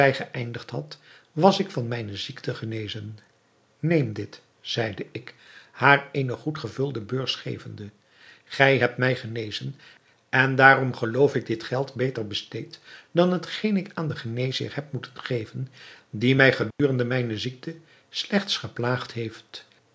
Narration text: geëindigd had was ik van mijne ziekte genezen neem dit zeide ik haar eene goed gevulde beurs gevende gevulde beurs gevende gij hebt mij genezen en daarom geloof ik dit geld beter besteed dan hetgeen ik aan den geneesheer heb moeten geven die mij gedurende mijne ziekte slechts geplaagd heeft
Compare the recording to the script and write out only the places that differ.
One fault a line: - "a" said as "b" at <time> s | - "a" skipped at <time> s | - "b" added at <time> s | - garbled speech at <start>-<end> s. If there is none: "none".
- "gevulde beurs gevende" skipped at 7.9 s